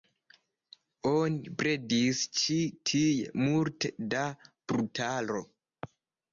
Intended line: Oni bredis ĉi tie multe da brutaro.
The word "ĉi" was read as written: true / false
true